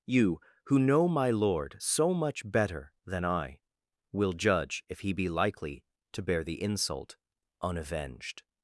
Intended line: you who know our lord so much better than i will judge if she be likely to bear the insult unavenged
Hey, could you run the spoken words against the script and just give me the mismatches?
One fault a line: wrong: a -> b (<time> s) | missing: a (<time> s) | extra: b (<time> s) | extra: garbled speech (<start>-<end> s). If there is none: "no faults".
wrong: our -> my (1.1 s)
wrong: she -> he (5.0 s)